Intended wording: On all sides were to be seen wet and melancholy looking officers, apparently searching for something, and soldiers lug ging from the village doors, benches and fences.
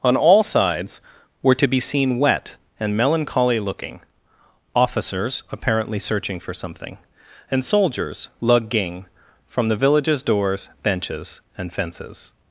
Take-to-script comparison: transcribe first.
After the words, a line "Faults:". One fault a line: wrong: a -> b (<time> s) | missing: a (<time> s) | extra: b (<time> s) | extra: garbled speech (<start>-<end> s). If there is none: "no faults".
On all sides were to be seen wet and melancholy looking officers, apparently searching for something, and soldiers lug ging from the villages doors, benches and fences.
Faults:
wrong: village -> villages (9.8 s)